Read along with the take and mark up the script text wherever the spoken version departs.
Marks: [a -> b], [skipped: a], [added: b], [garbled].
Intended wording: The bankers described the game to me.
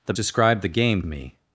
The [skipped: bankers] described the game [skipped: to] me.